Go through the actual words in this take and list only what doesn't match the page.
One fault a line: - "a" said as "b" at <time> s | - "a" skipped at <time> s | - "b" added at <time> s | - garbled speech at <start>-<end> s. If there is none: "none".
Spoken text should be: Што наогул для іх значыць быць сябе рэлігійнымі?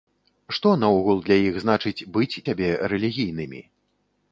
none